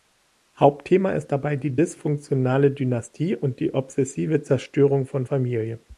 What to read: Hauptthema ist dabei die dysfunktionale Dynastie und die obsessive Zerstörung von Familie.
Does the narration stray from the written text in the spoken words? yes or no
no